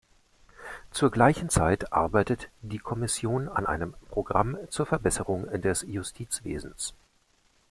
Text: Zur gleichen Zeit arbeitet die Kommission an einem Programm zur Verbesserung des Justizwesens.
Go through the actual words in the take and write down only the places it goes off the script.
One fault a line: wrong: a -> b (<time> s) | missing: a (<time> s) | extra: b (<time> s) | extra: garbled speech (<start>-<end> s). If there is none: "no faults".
no faults